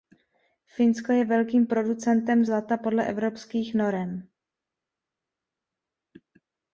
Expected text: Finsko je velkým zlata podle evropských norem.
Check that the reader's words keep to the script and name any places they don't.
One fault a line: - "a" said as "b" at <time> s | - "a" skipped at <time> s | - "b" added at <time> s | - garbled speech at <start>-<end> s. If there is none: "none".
- "producentem" added at 1.7 s